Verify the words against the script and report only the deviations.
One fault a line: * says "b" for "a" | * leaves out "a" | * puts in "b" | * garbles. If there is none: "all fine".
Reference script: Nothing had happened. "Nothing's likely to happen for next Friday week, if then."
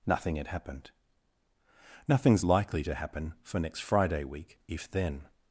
all fine